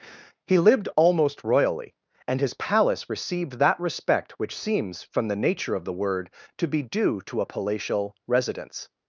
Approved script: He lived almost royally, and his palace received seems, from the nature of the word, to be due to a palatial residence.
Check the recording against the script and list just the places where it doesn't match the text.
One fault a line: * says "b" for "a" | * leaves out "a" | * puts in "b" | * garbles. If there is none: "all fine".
* puts in "that respect which"